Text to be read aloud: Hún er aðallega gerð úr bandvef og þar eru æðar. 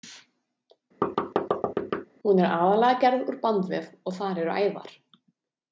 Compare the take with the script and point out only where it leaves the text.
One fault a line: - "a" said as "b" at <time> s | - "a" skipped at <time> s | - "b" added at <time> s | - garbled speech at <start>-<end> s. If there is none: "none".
none